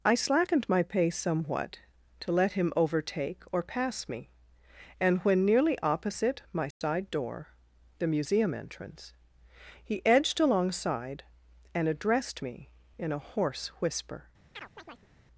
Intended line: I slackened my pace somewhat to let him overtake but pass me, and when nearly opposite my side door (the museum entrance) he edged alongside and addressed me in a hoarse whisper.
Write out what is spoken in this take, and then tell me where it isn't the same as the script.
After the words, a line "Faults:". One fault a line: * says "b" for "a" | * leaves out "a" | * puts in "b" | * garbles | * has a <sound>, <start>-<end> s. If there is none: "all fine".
I slackened my pace somewhat to let him overtake or pass me, and when nearly opposite my side door (the museum entrance) he edged alongside and addressed me in a hoarse whisper.
Faults:
* says "or" for "but"
* has a dropout, 6.7-6.8 s
* has a chirp, 14.5-15.1 s